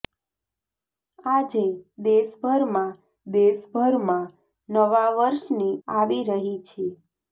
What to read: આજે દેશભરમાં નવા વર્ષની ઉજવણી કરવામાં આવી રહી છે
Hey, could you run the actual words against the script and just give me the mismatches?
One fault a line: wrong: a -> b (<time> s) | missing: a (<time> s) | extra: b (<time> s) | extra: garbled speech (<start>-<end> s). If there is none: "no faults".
extra: દેશભરમાં (3.3 s)
missing: ઉજવણી કરવામાં (5.8 s)